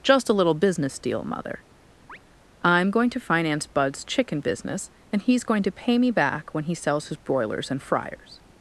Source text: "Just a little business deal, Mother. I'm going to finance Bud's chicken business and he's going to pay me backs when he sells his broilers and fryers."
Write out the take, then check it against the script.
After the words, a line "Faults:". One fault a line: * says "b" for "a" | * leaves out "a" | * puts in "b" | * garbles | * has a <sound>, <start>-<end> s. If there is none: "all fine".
"Just a little business deal, Mother. I'm going to finance Bud's chicken business and he's going to pay me back when he sells his broilers and fryers."
Faults:
* has a chirp, 2.1-2.2 s
* says "back" for "backs"